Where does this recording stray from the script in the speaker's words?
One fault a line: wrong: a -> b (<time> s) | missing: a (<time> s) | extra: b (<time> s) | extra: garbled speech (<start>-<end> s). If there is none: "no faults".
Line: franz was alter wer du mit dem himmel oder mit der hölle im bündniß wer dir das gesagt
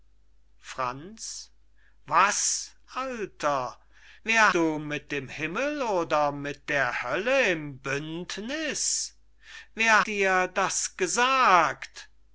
no faults